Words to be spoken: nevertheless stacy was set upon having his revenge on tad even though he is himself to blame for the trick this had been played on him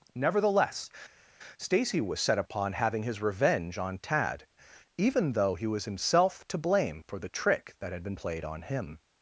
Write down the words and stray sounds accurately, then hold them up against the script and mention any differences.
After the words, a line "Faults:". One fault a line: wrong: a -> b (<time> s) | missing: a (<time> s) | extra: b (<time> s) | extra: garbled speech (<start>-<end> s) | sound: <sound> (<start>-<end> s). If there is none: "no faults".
nevertheless stacy was set upon having his revenge on tad even though he was himself to blame for the trick that had been played on him
Faults:
wrong: is -> was (5.7 s)
wrong: this -> that (7.8 s)